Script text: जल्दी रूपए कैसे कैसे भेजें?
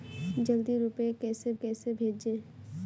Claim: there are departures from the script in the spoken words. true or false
false